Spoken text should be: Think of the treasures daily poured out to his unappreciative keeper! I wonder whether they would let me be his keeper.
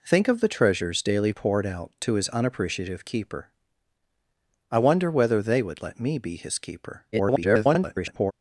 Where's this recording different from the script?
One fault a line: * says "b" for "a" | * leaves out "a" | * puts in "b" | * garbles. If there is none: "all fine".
* garbles